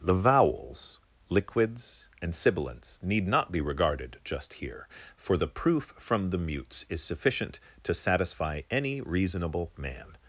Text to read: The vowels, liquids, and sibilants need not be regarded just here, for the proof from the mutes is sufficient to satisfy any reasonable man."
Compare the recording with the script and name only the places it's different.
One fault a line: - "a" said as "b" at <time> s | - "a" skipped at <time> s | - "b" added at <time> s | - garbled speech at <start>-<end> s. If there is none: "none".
none